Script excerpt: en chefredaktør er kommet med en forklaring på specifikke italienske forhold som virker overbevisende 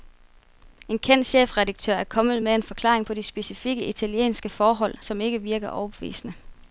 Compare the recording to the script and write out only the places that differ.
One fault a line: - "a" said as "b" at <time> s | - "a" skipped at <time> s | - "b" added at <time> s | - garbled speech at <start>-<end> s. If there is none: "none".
- "kendt" added at 1.0 s
- "de" added at 3.1 s
- "ikke" added at 5.2 s